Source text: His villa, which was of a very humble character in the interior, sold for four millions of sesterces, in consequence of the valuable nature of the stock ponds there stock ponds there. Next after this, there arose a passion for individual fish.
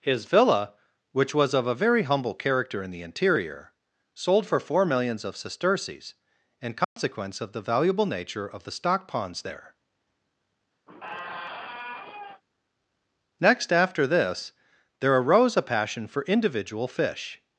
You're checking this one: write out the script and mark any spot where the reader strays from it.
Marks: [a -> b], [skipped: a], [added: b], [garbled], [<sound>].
His villa, which was of a very humble character in the interior, sold for four millions of sesterces, in consequence [dropout] of the valuable nature of the stock ponds there [skipped: stock ponds there.] [squeak] Next after this, there arose a passion for individual fish.